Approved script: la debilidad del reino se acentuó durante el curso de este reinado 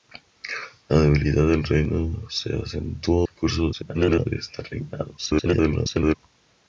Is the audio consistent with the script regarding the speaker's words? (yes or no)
no